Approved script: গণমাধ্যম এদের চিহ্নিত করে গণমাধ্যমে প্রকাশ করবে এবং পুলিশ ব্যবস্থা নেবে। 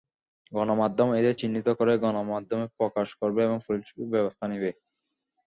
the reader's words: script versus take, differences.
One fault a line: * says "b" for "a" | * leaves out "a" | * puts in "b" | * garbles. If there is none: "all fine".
all fine